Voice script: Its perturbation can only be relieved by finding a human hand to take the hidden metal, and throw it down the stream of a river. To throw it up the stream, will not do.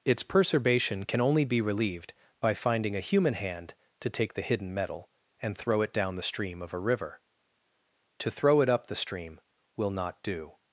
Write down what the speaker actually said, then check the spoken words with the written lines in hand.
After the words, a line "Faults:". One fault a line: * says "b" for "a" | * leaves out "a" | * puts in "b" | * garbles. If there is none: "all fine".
Its perturbation can only be relieved by finding a human hand to take the hidden metal, and throw it down the stream of a river. To throw it up the stream, will not do.
Faults:
all fine